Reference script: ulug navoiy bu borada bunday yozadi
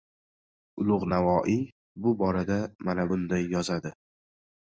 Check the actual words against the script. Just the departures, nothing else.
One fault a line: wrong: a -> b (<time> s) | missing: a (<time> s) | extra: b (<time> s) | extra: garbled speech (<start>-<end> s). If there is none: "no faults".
extra: mana (2.9 s)